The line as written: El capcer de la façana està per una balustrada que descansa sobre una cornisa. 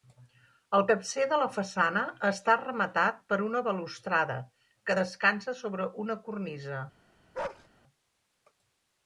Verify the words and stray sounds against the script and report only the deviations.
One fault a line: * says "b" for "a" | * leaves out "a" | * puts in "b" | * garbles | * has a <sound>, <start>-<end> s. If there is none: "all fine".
* puts in "rematat"
* has a bark, 7.3-7.7 s